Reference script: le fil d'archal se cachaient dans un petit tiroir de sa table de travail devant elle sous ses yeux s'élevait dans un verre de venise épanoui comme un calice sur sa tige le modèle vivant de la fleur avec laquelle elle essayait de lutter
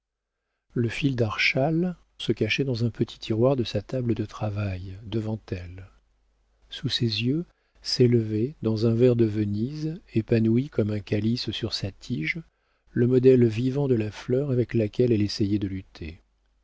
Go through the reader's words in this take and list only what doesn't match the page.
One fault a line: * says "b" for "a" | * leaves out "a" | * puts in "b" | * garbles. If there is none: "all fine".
all fine